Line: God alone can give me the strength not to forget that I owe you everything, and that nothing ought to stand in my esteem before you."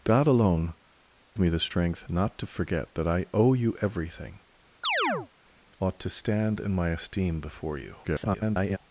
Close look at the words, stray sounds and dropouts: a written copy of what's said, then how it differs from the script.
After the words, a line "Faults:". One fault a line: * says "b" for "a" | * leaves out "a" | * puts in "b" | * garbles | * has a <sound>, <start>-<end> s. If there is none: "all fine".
God alone me the strength not to forget that I owe you everything, ought to stand in my esteem before you." [garbled]
Faults:
* leaves out "can give"
* leaves out "and that nothing"
* has a chirp, 4.8-5.3 s
* garbles